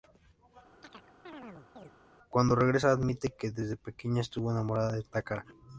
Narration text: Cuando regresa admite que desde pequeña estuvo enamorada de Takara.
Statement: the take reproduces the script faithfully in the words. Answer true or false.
true